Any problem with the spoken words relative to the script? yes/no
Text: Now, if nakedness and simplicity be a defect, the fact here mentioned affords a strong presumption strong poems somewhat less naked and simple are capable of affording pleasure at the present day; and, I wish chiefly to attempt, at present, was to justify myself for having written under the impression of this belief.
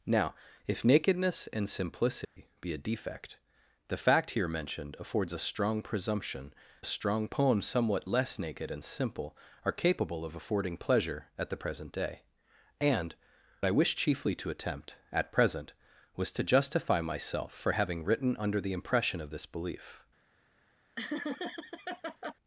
no